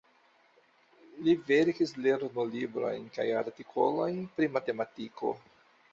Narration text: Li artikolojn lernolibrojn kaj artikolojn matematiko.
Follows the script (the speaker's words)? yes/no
no